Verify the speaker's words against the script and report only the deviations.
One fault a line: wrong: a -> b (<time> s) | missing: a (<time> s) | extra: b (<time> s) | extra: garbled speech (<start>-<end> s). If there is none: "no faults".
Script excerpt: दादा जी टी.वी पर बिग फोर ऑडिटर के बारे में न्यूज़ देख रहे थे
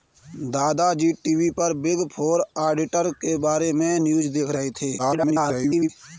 extra: garbled speech (5.0-5.9 s)